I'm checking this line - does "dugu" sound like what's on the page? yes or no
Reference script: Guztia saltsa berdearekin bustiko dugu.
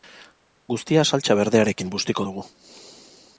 yes